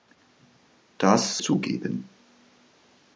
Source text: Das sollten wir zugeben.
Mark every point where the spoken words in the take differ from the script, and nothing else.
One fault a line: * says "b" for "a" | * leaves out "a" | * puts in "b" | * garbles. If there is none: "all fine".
* leaves out "sollten wir"